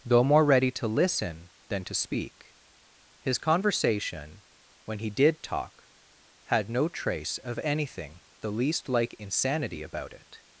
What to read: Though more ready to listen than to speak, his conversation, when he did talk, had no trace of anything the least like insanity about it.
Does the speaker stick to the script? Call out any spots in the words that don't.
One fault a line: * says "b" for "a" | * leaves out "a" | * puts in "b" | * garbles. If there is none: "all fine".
all fine